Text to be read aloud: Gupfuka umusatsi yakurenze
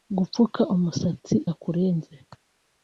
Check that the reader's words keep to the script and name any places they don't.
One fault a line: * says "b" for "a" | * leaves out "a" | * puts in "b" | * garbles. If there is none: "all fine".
all fine